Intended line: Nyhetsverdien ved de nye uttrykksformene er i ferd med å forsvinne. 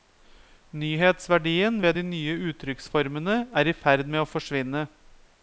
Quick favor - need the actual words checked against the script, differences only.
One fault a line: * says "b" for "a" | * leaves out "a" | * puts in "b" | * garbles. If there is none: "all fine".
all fine